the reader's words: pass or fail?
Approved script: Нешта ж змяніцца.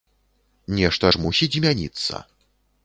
fail